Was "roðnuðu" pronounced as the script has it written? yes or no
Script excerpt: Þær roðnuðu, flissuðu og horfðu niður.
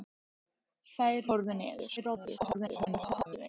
no